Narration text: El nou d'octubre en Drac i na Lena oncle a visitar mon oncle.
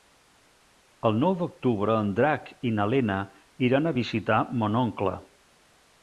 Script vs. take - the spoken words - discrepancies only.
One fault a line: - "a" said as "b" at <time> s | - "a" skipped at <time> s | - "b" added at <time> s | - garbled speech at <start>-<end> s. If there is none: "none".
- "oncle" said as "iran" at 3.7 s